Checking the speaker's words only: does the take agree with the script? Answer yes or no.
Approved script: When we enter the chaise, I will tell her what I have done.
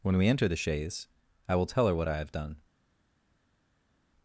yes